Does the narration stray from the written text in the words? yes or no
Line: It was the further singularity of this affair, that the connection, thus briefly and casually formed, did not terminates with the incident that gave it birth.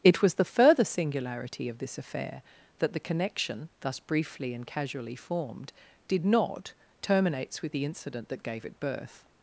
no